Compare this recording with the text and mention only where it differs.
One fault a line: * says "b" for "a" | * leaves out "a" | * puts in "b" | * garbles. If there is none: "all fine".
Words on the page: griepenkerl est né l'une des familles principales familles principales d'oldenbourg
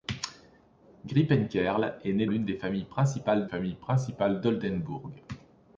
all fine